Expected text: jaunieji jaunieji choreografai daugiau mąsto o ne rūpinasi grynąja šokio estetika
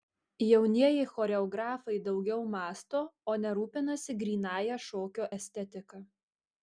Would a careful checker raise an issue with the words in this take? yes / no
yes